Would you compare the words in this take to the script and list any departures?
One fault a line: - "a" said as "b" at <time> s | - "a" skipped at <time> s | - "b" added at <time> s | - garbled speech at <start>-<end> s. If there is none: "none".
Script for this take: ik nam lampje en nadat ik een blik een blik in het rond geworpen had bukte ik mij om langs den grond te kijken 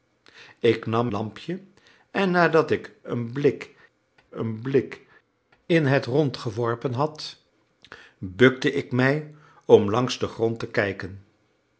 none